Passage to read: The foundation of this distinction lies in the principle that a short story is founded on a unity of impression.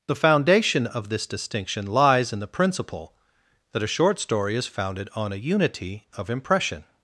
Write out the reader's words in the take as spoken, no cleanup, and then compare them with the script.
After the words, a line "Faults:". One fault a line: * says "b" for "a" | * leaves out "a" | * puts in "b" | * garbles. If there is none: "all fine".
The foundation of this distinction lies in the principle that a short story is founded on a unity of impression.
Faults:
all fine